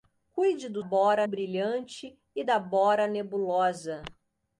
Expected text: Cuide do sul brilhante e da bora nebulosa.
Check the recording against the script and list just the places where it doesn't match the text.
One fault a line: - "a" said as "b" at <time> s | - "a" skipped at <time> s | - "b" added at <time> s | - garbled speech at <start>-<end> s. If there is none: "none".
- "sul" said as "bora" at 0.8 s